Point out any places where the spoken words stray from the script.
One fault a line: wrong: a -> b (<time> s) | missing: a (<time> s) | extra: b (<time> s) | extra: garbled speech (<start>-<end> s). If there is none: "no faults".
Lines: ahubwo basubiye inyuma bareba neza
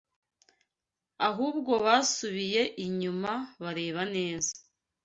no faults